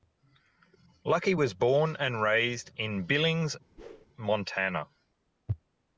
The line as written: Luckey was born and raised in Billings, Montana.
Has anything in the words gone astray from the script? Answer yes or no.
no